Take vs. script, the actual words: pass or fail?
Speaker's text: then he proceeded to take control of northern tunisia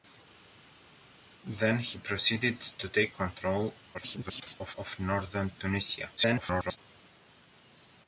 fail